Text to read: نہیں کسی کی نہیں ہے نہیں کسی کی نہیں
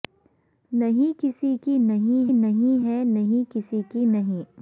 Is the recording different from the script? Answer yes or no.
yes